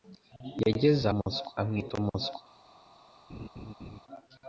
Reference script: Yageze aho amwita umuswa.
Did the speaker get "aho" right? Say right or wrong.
wrong